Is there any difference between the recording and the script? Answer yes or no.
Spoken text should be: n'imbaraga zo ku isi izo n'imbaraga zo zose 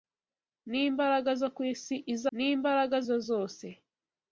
no